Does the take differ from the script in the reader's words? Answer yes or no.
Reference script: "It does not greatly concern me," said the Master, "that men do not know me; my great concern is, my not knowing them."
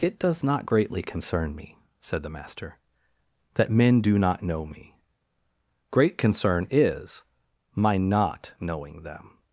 yes